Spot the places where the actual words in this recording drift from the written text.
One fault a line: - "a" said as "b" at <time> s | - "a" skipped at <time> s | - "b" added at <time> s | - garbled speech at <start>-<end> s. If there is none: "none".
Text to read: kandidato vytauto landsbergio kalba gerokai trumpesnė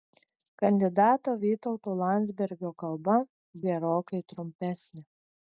none